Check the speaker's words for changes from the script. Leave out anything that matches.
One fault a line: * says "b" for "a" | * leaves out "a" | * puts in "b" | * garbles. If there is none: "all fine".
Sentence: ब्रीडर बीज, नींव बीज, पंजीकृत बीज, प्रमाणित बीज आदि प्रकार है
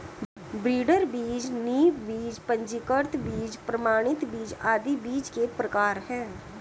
* puts in "बीज के"